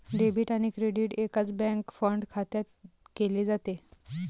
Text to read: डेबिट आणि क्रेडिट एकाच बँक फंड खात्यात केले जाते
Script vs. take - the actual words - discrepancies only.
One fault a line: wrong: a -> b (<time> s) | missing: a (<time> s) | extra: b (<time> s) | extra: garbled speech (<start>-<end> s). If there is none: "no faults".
no faults